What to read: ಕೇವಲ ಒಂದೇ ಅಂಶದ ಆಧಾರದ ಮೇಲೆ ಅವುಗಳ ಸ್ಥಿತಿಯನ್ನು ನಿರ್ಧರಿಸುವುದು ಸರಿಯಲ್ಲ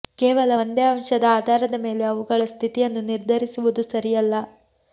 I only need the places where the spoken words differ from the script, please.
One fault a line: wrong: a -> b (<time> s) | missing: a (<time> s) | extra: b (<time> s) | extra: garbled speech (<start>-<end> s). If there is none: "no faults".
no faults